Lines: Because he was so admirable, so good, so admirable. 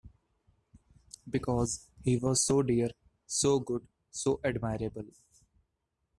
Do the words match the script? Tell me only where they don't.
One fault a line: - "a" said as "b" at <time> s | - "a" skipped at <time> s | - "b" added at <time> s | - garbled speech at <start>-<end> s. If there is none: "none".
- "admirable" said as "dear" at 2.6 s